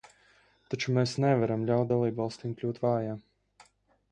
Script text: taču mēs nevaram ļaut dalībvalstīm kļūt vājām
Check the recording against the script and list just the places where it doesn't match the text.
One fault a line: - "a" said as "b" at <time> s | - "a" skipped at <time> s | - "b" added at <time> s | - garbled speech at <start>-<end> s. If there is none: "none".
none